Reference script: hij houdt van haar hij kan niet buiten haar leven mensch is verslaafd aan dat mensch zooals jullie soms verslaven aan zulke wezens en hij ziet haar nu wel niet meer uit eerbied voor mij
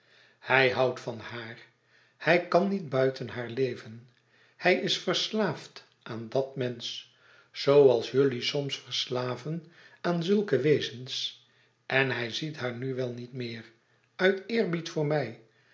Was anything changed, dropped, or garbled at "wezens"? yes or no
no